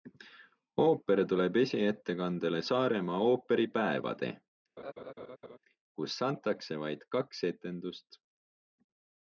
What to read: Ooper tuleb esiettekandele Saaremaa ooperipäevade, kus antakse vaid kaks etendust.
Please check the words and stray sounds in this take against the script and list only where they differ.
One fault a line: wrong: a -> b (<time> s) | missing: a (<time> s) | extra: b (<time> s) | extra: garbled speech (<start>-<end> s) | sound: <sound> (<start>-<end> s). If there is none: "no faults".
sound: laugh (4.8-5.6 s)